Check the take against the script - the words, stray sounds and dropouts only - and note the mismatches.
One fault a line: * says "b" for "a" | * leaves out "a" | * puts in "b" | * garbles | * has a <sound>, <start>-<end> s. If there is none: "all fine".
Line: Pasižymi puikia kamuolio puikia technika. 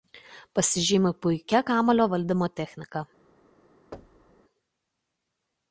* says "valdymo" for "puikia"
* has a thud, 3.9-4.4 s